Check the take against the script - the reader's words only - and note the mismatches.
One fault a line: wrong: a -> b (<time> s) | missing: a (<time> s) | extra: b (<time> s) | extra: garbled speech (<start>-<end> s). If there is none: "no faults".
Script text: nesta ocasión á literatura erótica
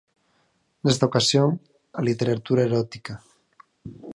no faults